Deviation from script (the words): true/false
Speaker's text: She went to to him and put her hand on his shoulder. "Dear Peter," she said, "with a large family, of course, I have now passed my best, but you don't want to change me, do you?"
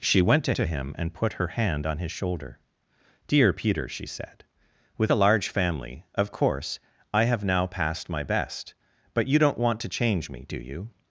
false